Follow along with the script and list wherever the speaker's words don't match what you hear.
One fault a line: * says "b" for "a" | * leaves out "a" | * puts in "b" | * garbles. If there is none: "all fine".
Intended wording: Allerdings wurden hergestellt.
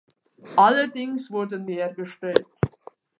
all fine